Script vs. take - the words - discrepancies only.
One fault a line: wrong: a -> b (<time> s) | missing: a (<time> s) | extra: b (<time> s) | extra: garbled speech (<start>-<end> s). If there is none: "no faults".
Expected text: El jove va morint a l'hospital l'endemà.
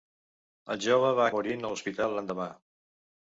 no faults